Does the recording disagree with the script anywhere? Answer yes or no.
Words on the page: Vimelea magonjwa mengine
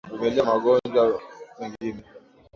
no